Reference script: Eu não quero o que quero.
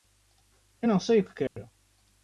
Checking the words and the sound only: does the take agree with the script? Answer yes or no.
no